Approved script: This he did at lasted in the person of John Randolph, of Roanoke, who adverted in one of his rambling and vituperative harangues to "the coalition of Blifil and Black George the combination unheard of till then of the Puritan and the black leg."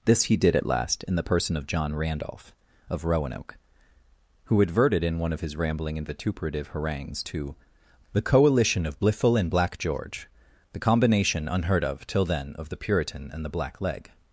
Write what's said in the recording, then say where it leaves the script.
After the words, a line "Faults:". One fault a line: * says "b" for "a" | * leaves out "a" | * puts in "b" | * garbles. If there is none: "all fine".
This he did at last in the person of John Randolph, of Roanoke, who adverted in one of his rambling and vituperative harangues to "the coalition of Blifil and Black George the combination unheard of till then of the Puritan and the black leg."
Faults:
* says "last" for "lasted"